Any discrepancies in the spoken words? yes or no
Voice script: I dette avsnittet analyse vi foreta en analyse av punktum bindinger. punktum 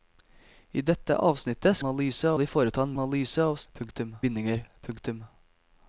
no